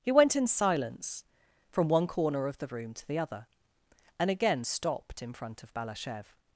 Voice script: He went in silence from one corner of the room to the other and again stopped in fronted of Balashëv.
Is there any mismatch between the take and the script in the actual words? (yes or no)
yes